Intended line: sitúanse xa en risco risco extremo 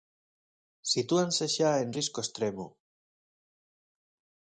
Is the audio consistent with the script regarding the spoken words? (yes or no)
no